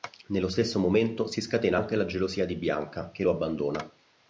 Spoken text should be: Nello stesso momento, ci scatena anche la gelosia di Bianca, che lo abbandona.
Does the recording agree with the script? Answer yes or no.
no